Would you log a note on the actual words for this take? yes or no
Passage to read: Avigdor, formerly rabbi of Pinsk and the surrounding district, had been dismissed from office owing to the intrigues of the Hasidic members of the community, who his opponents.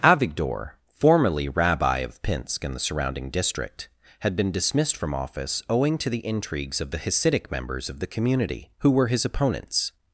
yes